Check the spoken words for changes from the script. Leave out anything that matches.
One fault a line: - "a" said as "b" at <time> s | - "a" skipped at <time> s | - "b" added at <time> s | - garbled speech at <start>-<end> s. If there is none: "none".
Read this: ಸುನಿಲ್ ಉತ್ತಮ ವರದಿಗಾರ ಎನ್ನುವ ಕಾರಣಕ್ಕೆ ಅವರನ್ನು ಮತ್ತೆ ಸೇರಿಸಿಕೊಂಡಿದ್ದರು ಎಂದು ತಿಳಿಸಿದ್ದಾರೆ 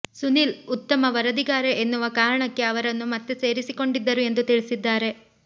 none